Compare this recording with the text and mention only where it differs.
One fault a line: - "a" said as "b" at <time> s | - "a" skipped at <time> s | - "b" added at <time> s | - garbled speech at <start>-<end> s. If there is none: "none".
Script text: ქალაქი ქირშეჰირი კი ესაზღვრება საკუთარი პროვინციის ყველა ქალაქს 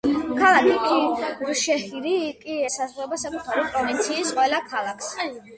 none